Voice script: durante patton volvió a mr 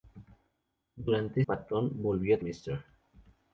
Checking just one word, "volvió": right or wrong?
right